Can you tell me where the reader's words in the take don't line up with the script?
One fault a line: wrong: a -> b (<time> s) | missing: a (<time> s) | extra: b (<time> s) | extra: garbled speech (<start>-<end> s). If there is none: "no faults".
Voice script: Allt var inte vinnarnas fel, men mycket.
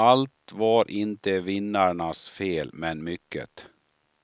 no faults